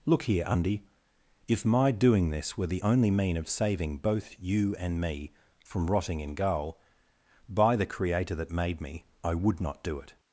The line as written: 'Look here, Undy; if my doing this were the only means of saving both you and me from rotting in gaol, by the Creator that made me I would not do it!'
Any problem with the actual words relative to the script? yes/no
yes